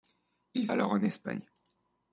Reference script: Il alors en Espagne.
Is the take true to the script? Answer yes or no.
yes